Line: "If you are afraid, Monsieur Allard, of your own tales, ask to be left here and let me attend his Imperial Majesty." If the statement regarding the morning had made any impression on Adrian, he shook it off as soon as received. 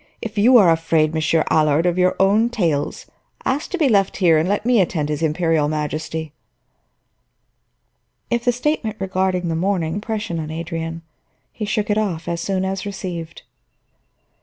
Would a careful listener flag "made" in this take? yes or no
yes